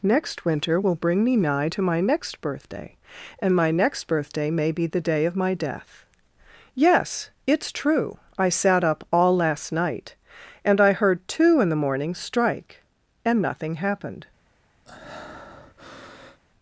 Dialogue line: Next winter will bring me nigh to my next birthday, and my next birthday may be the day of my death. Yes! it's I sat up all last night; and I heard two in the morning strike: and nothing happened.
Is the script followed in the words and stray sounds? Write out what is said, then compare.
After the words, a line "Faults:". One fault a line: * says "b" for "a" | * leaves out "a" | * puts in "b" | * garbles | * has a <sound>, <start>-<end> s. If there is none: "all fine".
Next winter will bring me nigh to my next birthday, and my next birthday may be the day of my death. Yes! it's true I sat up all last night; and I heard two in the morning strike: and nothing happened.
Faults:
* puts in "true"
* has a breath, 14.9-16.4 s